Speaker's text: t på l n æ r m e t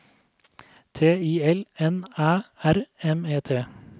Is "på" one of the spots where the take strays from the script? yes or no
yes